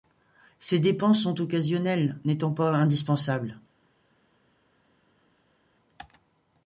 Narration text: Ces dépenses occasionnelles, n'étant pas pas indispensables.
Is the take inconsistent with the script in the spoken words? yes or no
yes